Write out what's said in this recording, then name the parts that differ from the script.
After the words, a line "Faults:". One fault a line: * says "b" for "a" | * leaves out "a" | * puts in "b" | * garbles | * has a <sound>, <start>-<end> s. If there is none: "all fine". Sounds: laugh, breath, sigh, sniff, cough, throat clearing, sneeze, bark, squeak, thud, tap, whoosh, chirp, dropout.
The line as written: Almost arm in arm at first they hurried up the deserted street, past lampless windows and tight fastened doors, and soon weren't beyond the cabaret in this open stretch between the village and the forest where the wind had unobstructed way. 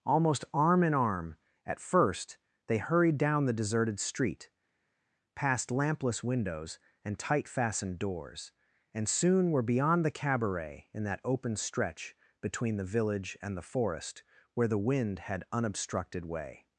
Almost arm in arm at first they hurried down the deserted street, past lampless windows and tight fastened doors, and soon were beyond the cabaret in that open stretch between the village and the forest where the wind had unobstructed way.
Faults:
* says "down" for "up"
* says "were" for "weren't"
* says "that" for "this"